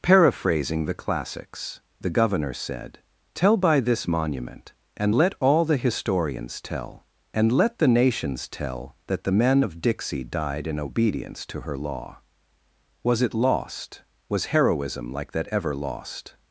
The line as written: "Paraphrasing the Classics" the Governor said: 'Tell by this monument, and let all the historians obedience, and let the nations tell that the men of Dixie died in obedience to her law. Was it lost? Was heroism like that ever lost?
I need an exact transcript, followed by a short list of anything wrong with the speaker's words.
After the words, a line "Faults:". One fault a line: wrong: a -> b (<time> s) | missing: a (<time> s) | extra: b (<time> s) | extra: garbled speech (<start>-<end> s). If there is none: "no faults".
"Paraphrasing the Classics" the Governor said: 'Tell by this monument, and let all the historians tell, and let the nations tell that the men of Dixie died in obedience to her law. Was it lost? Was heroism like that ever lost?
Faults:
wrong: obedience -> tell (6.6 s)